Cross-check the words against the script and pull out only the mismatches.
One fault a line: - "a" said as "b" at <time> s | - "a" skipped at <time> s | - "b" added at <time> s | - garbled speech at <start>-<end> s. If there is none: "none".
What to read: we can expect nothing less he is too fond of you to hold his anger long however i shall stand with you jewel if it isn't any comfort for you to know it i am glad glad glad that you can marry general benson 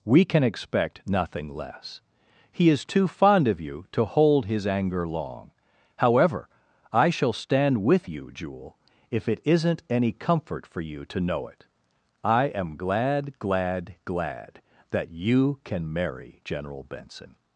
none